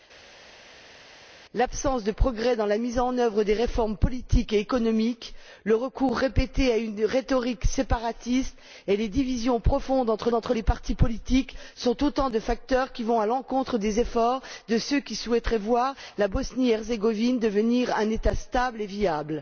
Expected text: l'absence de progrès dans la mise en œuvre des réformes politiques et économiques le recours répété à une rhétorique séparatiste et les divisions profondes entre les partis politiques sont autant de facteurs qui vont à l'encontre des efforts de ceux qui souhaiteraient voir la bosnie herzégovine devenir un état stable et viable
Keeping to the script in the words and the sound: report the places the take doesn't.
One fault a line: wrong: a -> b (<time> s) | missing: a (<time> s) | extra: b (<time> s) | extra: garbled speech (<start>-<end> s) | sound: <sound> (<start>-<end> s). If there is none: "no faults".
extra: entre (10.3 s)